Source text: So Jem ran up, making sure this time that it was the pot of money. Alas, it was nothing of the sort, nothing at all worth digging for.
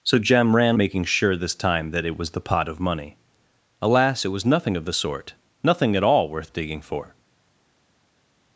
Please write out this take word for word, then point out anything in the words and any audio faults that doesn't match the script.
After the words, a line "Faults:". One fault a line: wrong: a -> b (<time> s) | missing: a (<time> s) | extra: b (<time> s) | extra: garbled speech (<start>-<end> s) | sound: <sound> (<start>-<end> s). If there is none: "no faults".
So Jem ran making sure this time that it was the pot of money. Alas, it was nothing of the sort, nothing at all worth digging for.
Faults:
missing: up (0.8 s)